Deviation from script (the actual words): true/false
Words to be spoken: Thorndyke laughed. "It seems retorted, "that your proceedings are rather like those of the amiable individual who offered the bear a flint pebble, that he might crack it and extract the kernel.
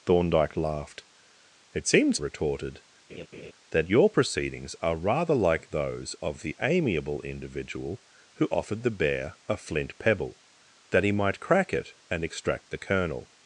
false